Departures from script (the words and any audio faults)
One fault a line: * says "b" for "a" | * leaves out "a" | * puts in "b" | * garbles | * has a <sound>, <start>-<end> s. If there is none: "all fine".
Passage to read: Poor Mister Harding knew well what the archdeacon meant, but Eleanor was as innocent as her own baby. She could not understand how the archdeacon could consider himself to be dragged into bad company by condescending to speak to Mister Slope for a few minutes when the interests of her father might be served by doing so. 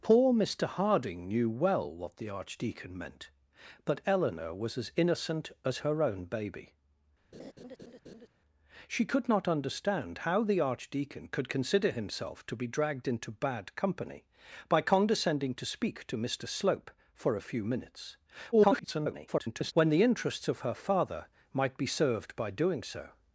* has a laugh, 7.3-8.3 s
* garbles